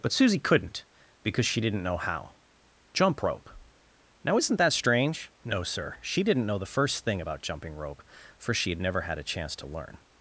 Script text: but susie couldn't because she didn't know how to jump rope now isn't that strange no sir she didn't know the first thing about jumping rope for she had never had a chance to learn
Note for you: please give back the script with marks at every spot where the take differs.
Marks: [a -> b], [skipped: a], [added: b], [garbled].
but susie couldn't because she didn't know how [skipped: to] jump rope now isn't that strange no sir she didn't know the first thing about jumping rope for she had never had a chance to learn